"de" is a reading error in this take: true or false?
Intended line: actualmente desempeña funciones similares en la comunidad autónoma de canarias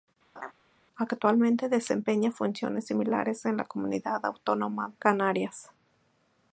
true